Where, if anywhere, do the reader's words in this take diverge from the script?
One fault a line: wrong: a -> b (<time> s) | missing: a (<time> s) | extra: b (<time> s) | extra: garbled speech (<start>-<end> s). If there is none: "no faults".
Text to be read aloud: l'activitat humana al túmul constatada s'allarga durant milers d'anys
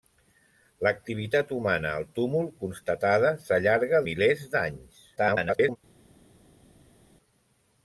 missing: durant (4.0 s)
extra: garbled speech (5.2-5.8 s)